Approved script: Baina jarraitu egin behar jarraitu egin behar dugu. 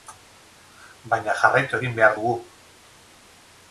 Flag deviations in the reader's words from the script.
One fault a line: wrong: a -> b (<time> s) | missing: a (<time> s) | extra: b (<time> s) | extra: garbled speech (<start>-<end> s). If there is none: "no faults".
missing: jarraitu egin behar (2.2 s)